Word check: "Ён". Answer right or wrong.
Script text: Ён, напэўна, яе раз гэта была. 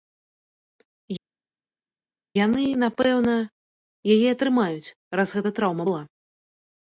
wrong